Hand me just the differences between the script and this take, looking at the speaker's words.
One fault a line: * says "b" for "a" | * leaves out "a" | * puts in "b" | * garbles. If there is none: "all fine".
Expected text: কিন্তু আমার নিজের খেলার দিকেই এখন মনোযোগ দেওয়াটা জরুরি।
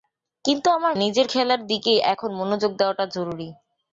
all fine